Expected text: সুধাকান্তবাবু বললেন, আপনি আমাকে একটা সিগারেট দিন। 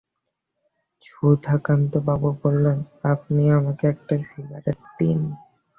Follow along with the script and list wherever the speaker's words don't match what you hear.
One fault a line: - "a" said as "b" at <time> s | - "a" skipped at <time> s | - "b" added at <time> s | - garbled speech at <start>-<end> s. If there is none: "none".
none